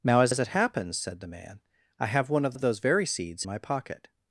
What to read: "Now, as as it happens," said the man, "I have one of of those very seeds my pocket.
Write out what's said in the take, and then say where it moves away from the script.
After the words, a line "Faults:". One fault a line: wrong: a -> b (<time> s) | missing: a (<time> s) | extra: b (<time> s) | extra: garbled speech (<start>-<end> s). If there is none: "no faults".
"Now, as as it happens," said the man, "I have one of of those very seeds my pocket.
Faults:
no faults